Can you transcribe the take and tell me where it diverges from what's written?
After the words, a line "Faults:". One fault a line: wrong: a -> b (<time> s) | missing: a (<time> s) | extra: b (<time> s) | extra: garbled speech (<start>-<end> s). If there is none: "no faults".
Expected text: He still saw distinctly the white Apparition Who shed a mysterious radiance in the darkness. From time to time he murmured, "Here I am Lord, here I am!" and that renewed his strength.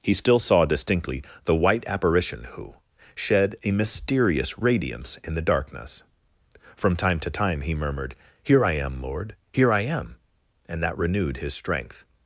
He still saw distinctly the white Apparition Who shed a mysterious radiance in the darkness. From time to time he murmured, "Here I am Lord, here I am!" and that renewed his strength.
Faults:
no faults